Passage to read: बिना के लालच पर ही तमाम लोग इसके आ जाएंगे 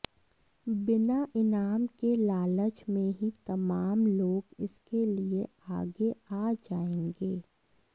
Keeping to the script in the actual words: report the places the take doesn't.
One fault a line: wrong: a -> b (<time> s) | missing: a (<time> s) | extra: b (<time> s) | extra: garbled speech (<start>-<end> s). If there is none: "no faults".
extra: इनाम (1.4 s)
wrong: पर -> में (2.9 s)
extra: लिए आगे (5.1 s)